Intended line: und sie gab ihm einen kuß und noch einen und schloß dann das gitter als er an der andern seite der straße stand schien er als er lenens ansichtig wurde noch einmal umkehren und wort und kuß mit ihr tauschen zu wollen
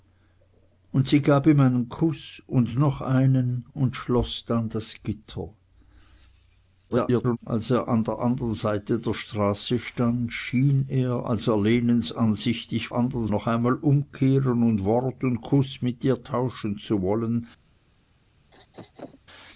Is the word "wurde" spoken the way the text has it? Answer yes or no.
no